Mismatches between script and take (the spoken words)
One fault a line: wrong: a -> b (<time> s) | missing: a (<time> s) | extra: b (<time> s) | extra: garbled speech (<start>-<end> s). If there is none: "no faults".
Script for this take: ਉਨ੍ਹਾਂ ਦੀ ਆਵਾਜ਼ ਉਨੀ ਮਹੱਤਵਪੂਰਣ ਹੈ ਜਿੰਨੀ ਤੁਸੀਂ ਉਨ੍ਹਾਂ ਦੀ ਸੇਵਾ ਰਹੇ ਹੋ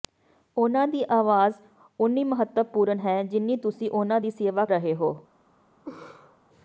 no faults